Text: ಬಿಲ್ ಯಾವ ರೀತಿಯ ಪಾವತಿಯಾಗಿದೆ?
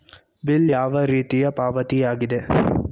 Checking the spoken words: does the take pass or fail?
pass